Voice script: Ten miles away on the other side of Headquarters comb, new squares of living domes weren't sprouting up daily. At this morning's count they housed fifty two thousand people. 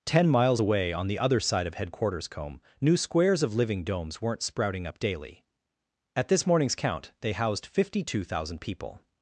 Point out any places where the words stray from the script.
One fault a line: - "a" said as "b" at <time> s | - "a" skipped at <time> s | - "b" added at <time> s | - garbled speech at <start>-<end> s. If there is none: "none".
none